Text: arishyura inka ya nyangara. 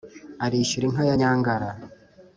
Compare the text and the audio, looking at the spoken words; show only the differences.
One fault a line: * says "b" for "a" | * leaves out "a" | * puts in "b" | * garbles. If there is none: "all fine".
all fine